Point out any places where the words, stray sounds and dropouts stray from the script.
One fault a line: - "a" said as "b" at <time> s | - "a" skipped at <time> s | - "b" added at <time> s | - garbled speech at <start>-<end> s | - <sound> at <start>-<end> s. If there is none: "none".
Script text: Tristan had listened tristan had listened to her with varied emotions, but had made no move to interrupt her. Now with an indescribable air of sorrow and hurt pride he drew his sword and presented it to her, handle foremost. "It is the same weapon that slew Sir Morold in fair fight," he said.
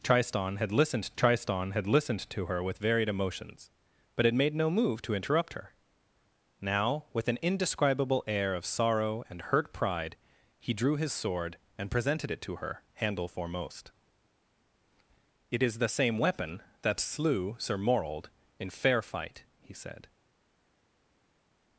none